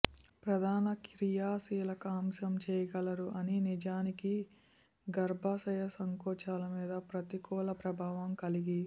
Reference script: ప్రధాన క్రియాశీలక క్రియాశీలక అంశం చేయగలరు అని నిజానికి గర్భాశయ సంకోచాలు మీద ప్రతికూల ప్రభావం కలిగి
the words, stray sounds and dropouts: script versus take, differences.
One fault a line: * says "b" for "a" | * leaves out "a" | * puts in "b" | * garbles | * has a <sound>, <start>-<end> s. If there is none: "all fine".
* leaves out "క్రియాశీలక"